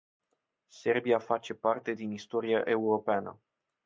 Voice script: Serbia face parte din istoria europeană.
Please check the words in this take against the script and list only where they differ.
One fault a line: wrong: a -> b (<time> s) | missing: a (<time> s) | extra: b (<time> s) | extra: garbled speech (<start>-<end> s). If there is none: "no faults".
no faults